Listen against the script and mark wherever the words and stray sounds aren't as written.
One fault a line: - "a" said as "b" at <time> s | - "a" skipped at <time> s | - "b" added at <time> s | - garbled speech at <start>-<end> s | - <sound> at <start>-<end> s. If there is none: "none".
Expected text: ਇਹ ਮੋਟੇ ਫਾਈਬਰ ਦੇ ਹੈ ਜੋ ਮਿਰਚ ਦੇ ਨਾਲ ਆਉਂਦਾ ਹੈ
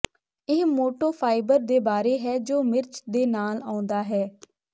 - "ਬਾਰੇ" added at 1.8 s